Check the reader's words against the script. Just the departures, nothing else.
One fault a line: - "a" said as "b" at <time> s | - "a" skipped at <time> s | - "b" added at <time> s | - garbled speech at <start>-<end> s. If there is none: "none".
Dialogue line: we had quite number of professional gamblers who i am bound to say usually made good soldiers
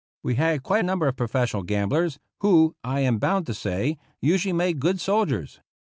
none